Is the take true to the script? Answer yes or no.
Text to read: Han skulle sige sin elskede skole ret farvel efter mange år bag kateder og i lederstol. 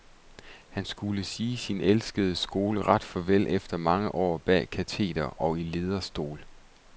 yes